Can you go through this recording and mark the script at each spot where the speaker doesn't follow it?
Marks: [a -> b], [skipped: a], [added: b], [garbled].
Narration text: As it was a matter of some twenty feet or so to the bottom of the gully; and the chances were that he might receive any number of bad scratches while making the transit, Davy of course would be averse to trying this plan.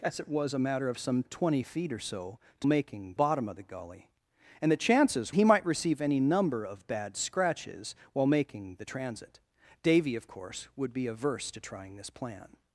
As it was a matter of some twenty feet or so to [the -> making] bottom of the gully; and the chances [skipped: were that] he might receive any number of bad scratches while making the transit, Davy of course would be averse to trying this plan.